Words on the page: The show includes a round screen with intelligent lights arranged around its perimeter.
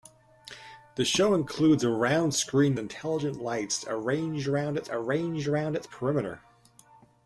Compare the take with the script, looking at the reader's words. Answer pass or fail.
fail